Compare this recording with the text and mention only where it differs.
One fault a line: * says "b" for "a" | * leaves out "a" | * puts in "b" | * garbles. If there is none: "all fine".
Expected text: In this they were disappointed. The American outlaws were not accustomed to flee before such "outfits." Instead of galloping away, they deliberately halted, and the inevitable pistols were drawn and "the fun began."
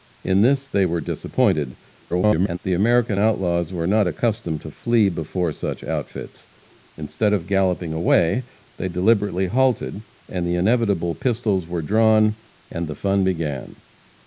* garbles